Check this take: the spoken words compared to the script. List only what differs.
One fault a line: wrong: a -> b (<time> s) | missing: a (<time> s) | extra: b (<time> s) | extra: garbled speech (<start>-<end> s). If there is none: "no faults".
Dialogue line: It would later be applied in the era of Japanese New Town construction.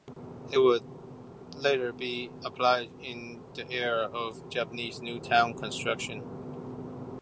no faults